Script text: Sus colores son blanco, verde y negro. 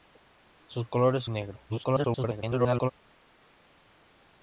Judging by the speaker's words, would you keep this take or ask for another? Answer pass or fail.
fail